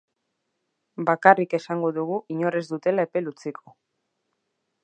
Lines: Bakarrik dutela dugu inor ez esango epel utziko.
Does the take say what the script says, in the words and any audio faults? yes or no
no